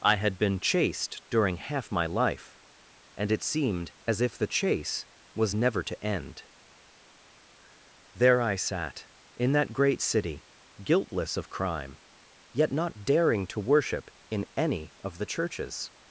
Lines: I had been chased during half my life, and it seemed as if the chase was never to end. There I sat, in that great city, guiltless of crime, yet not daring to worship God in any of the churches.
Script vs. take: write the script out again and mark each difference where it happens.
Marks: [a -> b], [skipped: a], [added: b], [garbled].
I had been chased during half my life, and it seemed as if the chase was never to end. There I sat, in that great city, guiltless of crime, yet not daring to worship [skipped: God] in any of the churches.